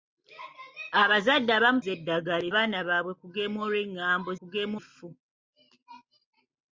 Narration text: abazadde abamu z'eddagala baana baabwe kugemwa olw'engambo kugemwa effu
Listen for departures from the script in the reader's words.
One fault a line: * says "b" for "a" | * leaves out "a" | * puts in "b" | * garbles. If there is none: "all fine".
all fine